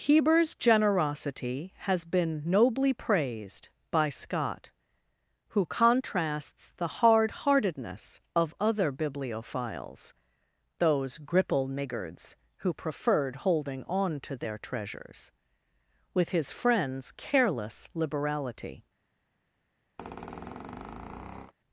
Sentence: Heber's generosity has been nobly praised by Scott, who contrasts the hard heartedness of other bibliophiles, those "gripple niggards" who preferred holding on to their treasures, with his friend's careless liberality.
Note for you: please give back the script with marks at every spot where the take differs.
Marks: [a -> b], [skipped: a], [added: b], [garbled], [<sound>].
Heber's generosity has been nobly praised by Scott, who contrasts the hard heartedness of other bibliophiles, those "gripple niggards" who preferred holding on to their treasures, with his friend's careless liberality. [squeak]